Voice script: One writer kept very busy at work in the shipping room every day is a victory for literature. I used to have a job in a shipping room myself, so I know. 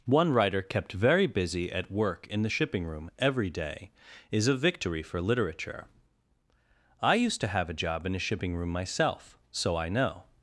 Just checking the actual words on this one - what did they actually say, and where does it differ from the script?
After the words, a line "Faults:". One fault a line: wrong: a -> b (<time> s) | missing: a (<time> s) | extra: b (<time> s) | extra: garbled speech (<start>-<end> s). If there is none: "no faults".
One writer kept very busy at work in the shipping room every day is a victory for literature. I used to have a job in a shipping room myself, so I know.
Faults:
no faults